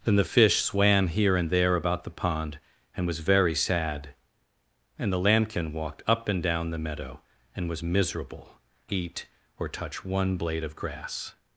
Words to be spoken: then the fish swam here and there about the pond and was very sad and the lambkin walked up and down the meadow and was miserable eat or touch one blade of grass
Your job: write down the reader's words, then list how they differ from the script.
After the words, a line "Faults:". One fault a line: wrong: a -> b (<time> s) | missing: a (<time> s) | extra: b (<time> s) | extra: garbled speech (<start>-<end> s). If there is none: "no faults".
then the fish swam here and there about the pond and was very sad and the lambkin walked up and down the meadow and was miserable eat or touch one blade of grass
Faults:
no faults